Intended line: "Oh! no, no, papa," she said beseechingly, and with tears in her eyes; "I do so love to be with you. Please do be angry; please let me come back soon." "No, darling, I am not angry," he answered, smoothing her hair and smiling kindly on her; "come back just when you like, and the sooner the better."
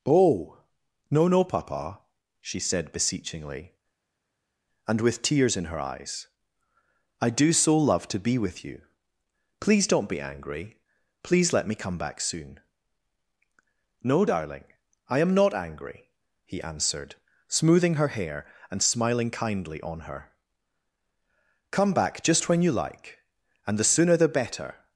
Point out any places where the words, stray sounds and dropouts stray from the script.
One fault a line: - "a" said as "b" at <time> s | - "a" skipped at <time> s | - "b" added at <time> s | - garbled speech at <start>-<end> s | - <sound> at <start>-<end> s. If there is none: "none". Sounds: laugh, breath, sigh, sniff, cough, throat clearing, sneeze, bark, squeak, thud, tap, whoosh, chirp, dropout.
- "do" said as "don't" at 9.9 s